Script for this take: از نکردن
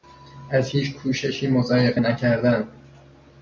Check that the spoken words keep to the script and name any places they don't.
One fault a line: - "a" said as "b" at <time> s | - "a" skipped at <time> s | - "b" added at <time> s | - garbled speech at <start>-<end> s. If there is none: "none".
- "هیچ کوششی مضایقه" added at 0.7 s